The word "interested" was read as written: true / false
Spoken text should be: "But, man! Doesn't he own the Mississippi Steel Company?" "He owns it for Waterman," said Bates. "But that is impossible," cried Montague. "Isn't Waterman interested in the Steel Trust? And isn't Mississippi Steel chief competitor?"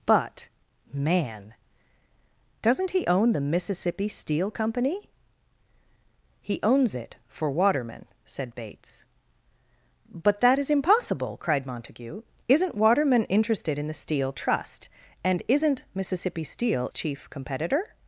true